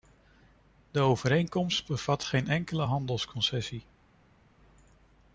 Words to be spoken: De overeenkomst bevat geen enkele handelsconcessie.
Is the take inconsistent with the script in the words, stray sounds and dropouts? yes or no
no